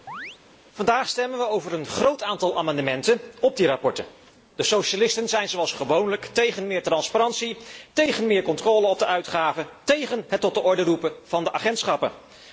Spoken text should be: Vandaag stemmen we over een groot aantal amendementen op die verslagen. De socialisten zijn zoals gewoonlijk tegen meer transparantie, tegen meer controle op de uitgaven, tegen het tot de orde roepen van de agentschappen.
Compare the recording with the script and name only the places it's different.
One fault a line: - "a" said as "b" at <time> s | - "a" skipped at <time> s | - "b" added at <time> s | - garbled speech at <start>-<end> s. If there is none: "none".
none